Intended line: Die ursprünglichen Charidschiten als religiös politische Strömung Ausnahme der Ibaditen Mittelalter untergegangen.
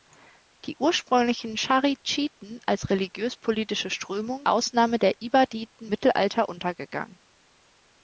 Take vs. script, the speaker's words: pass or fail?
pass